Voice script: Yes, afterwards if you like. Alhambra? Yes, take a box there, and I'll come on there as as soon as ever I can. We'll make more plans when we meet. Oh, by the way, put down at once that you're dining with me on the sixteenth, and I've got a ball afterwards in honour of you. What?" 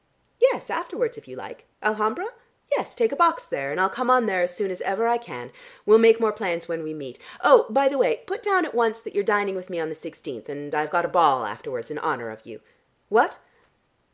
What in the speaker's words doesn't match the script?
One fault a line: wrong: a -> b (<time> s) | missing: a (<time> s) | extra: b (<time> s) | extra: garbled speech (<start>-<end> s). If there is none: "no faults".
missing: as (4.6 s)